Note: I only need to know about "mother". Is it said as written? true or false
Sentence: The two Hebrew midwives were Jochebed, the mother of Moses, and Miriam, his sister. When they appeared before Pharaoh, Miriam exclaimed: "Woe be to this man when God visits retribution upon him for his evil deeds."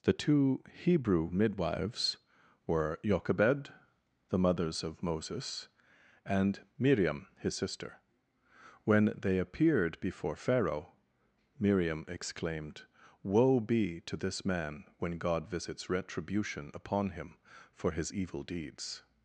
false